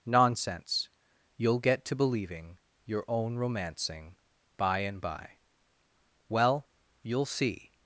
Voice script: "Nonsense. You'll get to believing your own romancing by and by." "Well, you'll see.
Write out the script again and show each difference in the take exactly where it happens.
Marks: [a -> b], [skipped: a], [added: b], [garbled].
"Nonsense. You'll get to believing your own romancing by and by." "Well, you'll see.